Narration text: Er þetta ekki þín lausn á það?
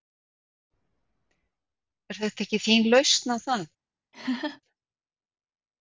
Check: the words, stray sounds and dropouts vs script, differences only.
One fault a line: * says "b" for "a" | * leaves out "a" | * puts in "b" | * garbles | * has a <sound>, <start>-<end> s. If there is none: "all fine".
* has a laugh, 4.1-4.6 s